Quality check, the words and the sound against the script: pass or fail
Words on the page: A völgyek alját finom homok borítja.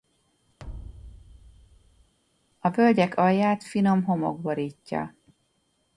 fail